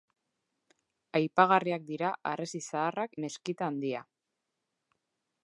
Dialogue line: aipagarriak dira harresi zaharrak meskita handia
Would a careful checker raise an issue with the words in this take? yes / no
no